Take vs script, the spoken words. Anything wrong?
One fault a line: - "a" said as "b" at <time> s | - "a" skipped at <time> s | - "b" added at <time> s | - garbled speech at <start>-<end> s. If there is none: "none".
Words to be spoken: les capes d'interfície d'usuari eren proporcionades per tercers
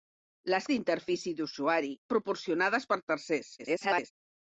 - "capes" skipped at 0.7 s
- "eren" skipped at 1.9 s
- garbled speech at 3.6-4.1 s